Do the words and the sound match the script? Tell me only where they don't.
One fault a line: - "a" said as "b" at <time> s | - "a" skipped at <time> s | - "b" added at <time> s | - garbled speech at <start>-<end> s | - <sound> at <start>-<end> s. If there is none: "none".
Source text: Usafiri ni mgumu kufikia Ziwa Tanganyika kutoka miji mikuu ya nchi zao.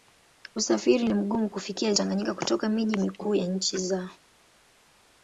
- "Ziwa" skipped at 1.9 s